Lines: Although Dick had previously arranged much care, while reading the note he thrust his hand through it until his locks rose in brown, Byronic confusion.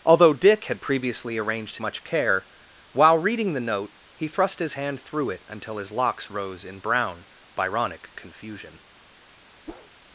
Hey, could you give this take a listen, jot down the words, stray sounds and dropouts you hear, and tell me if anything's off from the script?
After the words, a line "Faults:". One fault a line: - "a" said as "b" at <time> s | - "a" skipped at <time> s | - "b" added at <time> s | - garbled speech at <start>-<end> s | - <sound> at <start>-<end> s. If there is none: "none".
Although Dick had previously arranged much care, while reading the note he thrust his hand through it until his locks rose in brown, Byronic confusion.
Faults:
- whoosh at 9.7-9.9 s